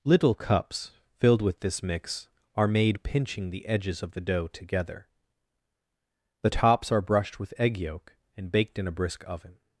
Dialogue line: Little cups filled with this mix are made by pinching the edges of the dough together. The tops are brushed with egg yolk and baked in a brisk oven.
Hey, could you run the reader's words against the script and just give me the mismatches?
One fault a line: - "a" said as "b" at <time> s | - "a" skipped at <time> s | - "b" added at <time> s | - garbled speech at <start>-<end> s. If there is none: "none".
- "by" skipped at 3.0 s